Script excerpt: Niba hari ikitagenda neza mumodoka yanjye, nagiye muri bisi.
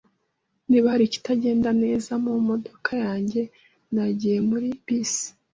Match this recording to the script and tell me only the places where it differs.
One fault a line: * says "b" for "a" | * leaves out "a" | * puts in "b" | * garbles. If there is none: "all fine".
all fine